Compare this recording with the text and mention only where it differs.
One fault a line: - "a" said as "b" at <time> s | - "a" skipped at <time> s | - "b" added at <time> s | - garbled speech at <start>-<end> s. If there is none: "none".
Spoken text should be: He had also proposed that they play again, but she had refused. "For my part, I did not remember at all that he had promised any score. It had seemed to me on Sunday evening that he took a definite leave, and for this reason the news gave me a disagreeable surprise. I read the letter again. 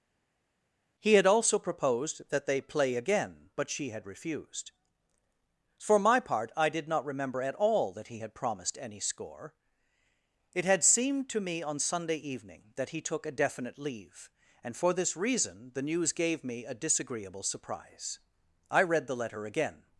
none